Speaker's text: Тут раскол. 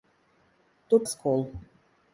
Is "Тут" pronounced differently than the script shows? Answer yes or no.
no